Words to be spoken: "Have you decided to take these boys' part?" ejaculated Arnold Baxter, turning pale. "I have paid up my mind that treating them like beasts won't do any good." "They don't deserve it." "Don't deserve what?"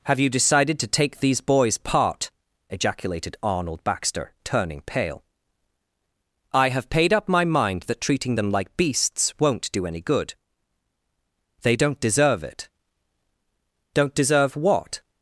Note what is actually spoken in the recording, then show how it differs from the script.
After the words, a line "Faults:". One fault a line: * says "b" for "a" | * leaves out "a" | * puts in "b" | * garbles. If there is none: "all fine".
"Have you decided to take these boys' part?" ejaculated Arnold Baxter, turning pale. "I have paid up my mind that treating them like beasts won't do any good." "They don't deserve it." "Don't deserve what?"
Faults:
all fine